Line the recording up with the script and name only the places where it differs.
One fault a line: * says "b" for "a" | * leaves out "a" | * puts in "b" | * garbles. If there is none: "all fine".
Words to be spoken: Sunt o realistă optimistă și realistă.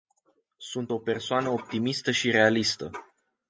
* says "persoană" for "realistă"